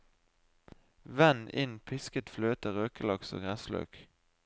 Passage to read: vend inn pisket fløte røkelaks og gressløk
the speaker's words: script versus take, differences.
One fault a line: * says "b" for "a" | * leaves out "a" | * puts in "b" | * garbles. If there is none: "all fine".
all fine